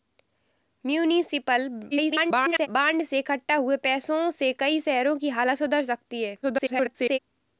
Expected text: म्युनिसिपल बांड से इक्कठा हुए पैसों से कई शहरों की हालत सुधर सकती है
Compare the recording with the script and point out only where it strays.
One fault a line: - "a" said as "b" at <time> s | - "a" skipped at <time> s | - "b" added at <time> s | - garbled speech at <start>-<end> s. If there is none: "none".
- garbled speech at 1.9-2.7 s
- garbled speech at 6.4-7.2 s